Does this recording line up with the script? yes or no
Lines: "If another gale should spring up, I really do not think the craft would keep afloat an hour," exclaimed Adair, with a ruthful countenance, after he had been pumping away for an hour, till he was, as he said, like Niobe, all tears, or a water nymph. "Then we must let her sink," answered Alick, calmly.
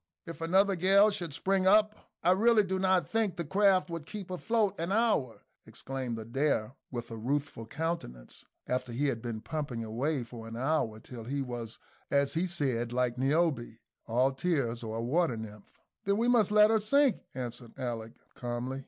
yes